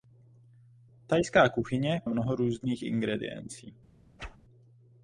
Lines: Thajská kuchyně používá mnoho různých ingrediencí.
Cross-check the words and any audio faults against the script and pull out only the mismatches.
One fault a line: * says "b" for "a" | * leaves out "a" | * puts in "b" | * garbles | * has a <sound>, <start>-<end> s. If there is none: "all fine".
* leaves out "používá"
* has a whoosh, 4.2-4.4 s